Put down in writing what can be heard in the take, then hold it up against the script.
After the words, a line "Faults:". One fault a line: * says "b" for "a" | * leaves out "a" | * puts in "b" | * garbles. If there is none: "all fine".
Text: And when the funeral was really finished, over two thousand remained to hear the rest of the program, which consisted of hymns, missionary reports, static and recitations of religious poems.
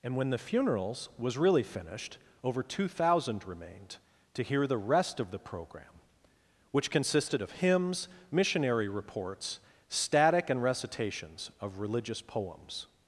And when the funerals was really finished, over two thousand remained to hear the rest of the program, which consisted of hymns, missionary reports, static and recitations of religious poems.
Faults:
* says "funerals" for "funeral"